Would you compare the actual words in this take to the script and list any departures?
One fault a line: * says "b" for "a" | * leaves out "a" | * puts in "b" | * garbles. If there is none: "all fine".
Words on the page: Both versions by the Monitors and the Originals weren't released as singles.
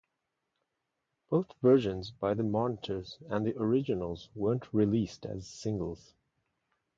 all fine